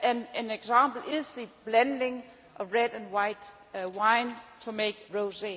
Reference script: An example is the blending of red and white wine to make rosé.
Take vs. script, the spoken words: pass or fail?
pass